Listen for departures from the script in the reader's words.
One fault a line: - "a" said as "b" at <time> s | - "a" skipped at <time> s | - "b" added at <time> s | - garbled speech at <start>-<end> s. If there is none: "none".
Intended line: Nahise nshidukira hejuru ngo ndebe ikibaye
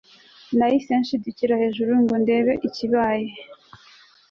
none